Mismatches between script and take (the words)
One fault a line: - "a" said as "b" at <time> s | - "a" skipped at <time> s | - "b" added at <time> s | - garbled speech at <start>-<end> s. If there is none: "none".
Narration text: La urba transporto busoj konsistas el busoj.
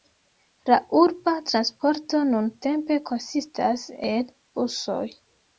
- "busoj" said as "nuntempe" at 2.3 s